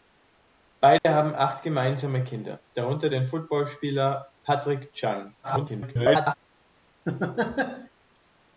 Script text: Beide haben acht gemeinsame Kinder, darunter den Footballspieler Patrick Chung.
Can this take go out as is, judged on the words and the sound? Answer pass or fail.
fail